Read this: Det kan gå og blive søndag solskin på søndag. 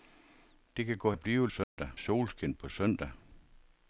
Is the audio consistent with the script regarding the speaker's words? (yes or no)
yes